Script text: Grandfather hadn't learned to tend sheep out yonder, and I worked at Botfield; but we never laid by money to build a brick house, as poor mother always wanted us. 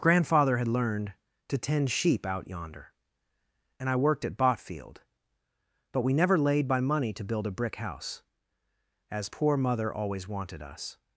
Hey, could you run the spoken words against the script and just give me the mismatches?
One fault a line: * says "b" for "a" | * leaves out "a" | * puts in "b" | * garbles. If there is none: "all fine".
* says "had" for "hadn't"